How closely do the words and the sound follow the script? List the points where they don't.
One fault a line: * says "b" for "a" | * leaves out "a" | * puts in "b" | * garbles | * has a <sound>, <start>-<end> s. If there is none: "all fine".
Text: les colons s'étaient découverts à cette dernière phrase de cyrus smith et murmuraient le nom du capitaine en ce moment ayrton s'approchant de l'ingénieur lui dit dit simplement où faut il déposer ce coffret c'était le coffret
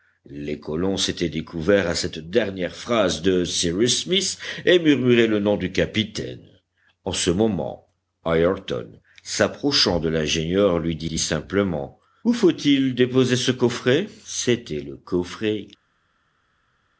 all fine